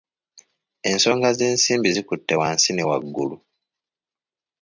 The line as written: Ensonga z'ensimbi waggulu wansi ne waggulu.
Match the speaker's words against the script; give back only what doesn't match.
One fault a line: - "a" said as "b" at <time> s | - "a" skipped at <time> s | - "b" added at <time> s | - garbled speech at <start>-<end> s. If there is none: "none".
- "waggulu" said as "zikutte" at 1.9 s